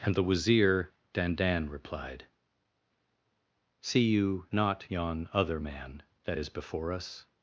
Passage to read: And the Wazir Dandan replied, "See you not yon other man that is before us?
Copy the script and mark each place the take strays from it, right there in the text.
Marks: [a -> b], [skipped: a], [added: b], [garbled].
And the Wazir Dandan replied, "See you not yon other man that is before us?